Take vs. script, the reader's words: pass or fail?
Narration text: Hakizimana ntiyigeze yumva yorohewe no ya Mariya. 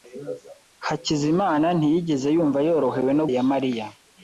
pass